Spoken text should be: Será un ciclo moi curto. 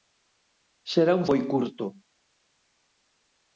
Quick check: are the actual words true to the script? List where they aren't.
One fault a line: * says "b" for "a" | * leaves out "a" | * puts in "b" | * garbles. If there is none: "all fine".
* leaves out "ciclo"